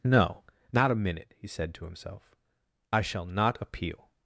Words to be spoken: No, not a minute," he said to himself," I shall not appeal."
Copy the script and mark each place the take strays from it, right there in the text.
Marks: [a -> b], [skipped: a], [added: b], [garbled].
No, not a minute," he said to himself," I shall not appeal."